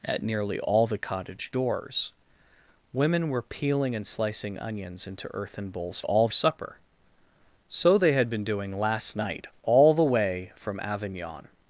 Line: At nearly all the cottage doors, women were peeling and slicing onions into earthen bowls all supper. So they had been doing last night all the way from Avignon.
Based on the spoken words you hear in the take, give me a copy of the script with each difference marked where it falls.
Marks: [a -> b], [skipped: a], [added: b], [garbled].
At nearly all the cottage doors, women were peeling and slicing onions into earthen bowls all supper. So they had been doing last night all the way from Avignon.